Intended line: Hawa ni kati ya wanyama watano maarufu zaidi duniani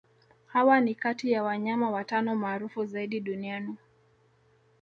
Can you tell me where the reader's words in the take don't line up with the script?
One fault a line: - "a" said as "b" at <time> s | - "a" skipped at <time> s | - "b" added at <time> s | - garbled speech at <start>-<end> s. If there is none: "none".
none